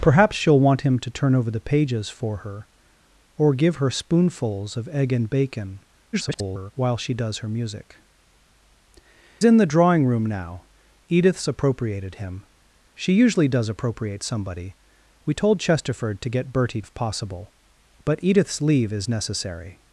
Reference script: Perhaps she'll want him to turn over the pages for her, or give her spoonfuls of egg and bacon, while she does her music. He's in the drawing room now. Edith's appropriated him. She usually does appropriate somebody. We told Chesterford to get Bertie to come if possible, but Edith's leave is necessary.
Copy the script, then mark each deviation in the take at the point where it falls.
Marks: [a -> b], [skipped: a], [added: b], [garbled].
Perhaps she'll want him to turn over the pages for her, or give her spoonfuls of egg and bacon, [garbled] while she does her music. [skipped: He's] in the drawing room now. Edith's appropriated him. She usually does appropriate somebody. We told Chesterford to get Bertie [skipped: to come] if possible, but Edith's leave is necessary.